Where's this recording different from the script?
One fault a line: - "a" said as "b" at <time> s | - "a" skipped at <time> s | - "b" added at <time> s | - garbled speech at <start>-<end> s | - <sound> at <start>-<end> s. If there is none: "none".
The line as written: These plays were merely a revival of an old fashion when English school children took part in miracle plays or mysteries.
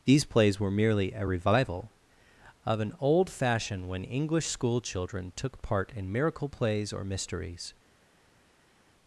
none